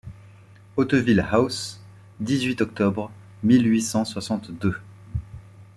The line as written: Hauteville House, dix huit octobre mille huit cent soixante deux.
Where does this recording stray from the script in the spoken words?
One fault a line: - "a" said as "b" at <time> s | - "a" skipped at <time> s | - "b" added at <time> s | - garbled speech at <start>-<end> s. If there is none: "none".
none